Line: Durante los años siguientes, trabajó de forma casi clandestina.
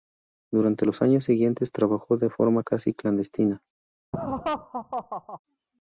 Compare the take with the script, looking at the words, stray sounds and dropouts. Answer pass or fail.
fail